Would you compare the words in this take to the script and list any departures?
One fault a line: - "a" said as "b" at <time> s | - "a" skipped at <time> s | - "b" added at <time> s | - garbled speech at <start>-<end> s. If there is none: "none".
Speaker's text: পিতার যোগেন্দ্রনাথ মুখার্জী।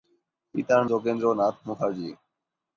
none